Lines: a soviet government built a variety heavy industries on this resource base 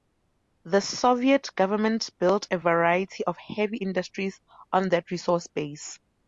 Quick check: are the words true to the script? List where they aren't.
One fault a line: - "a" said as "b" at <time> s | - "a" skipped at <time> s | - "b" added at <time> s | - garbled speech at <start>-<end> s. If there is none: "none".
- "a" said as "the" at 0.6 s
- "of" added at 3.2 s
- "this" said as "that" at 4.9 s